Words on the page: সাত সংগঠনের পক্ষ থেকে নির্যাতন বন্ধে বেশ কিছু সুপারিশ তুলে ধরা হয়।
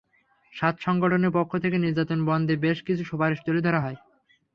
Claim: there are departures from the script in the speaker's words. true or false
false